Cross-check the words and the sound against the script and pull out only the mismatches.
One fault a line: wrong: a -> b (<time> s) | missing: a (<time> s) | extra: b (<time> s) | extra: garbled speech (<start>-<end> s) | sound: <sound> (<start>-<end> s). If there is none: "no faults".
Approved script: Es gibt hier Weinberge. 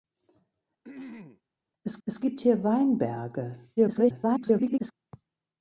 sound: throat clearing (0.8-1.4 s)
extra: es (2.0 s)
extra: garbled speech (3.8-4.9 s)